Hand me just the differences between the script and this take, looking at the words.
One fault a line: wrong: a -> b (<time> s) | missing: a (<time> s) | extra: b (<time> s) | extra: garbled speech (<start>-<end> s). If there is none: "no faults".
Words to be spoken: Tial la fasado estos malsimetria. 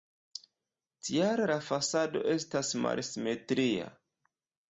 wrong: estos -> estas (2.4 s)